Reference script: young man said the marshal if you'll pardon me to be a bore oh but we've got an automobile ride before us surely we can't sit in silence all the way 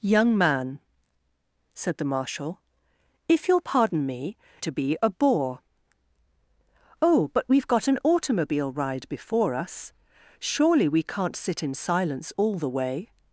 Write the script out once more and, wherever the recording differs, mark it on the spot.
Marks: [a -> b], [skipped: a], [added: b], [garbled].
young man said the marshal if you'll pardon me to be a bore oh but we've got an automobile ride before us surely we can't sit in silence all the way